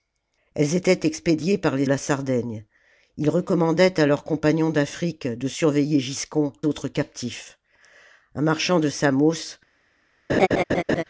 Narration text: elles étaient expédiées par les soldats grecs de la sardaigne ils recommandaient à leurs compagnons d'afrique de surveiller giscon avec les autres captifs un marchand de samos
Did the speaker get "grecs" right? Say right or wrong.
wrong